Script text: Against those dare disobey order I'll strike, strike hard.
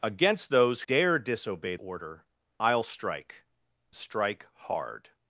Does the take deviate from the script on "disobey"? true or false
false